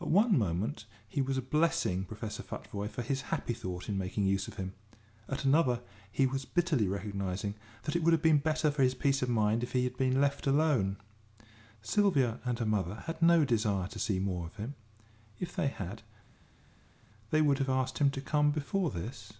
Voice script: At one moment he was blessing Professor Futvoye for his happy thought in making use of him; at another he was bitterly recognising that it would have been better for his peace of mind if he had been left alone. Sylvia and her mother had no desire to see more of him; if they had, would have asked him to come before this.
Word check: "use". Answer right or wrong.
right